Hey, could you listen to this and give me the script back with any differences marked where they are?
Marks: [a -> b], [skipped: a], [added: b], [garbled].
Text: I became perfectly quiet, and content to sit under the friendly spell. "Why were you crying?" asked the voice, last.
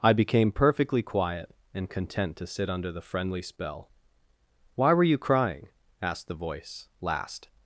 I became perfectly quiet, and content to sit under the friendly spell. "Why were you crying?" asked the voice, last.